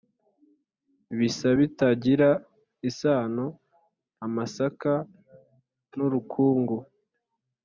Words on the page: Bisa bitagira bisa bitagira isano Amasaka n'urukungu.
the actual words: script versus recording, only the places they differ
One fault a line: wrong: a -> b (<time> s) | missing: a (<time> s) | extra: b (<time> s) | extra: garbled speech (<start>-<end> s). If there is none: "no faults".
missing: bisa bitagira (2.3 s)